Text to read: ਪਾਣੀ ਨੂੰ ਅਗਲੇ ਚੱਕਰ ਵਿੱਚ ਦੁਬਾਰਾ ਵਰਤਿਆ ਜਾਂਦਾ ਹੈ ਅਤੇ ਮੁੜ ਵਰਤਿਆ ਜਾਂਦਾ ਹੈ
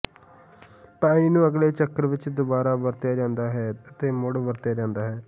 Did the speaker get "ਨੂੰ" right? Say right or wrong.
right